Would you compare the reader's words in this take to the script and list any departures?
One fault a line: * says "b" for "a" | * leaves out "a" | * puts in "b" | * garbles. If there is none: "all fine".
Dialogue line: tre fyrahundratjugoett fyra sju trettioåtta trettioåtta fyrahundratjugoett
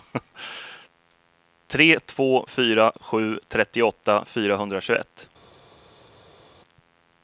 * says "två" for "fyrahundratjugoett"
* leaves out "trettioåtta"